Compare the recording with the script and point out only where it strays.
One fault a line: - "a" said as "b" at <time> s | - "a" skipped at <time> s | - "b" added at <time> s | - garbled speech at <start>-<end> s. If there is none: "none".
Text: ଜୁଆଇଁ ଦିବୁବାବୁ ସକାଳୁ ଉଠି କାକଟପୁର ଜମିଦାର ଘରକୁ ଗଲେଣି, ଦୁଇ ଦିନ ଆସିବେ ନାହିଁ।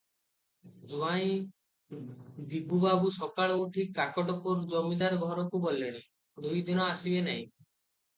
none